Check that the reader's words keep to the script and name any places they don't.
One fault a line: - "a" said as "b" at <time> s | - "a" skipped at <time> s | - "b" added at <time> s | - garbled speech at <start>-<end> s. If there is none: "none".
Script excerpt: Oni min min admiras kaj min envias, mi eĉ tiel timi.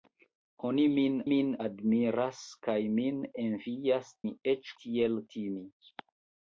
none